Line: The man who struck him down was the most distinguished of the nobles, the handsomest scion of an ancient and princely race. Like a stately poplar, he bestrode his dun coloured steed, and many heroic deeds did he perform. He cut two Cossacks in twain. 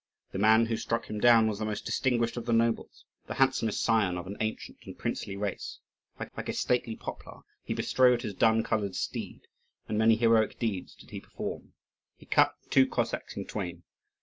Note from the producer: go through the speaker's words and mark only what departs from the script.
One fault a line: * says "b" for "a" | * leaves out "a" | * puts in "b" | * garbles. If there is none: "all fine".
* puts in "like"